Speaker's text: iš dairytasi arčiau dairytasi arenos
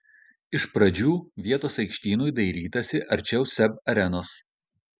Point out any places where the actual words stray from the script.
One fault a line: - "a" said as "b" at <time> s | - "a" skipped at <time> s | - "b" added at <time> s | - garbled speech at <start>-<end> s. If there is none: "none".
- "pradžių vietos aikštynui" added at 0.8 s
- "dairytasi" said as "seb" at 3.5 s